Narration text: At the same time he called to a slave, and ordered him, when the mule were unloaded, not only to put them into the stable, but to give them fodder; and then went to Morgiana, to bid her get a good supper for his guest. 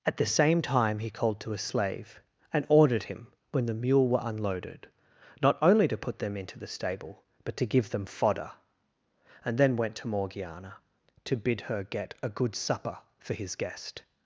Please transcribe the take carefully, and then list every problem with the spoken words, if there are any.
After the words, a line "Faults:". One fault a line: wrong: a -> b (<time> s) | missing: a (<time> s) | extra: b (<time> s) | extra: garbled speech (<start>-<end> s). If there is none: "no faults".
At the same time he called to a slave, and ordered him, when the mule were unloaded, not only to put them into the stable, but to give them fodder; and then went to Morgiana, to bid her get a good supper for his guest.
Faults:
no faults